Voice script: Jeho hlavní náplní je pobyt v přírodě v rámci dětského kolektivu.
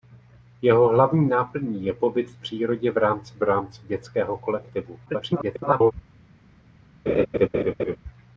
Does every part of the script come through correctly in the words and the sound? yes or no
no